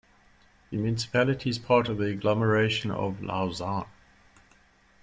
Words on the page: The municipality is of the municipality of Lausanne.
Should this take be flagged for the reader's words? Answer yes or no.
yes